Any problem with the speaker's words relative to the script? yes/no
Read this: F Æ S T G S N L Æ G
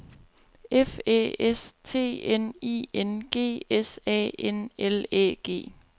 yes